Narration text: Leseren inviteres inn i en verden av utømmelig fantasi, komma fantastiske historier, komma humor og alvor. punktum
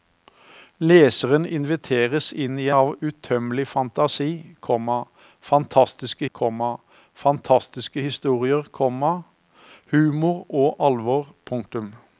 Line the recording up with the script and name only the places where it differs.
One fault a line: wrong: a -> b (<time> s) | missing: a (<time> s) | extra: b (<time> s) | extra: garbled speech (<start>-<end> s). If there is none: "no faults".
missing: en verden (2.7 s)
extra: komma fantastiske (6.3 s)